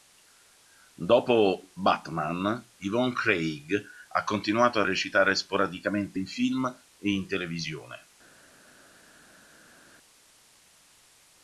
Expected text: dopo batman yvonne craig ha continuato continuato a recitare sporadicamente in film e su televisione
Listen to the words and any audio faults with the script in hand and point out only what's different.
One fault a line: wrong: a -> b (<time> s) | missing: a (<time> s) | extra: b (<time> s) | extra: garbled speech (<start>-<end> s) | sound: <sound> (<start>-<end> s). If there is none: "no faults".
missing: continuato (4.8 s)
wrong: su -> in (7.1 s)